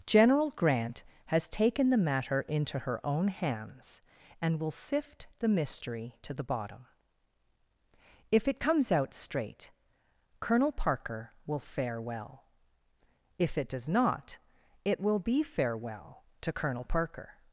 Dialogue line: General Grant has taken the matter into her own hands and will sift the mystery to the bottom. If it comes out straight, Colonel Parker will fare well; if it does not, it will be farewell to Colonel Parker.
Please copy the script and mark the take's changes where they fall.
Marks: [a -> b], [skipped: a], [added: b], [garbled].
General Grant has taken the matter into her own hands and will sift the mystery to the bottom. If it comes out straight, Colonel Parker will fare well; if it does not, it will be farewell to Colonel Parker.